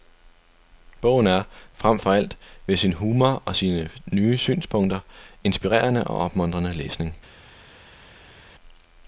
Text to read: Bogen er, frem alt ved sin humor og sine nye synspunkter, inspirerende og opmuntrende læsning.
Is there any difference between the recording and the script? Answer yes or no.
yes